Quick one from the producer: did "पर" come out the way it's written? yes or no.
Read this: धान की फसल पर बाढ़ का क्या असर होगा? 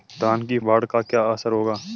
no